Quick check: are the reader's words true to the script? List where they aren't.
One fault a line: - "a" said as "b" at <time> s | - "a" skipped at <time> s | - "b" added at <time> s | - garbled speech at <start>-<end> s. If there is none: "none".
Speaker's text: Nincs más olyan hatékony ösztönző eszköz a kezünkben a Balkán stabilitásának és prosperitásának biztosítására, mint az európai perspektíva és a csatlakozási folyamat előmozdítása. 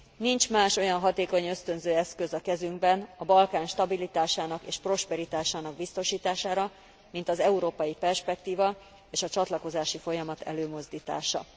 none